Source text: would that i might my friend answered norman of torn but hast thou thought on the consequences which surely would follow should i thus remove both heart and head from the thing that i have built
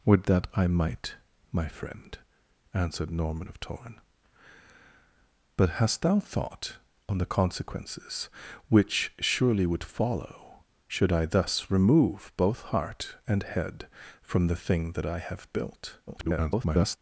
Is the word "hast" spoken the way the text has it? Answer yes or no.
yes